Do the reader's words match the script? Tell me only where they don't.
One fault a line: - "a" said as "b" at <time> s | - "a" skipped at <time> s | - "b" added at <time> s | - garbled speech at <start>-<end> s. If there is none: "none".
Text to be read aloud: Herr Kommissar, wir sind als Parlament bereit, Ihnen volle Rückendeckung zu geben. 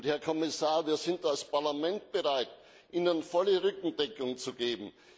none